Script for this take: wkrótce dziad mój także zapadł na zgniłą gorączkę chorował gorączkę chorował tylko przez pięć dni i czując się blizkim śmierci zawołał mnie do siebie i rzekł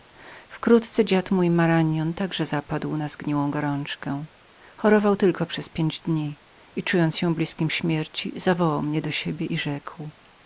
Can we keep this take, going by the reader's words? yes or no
no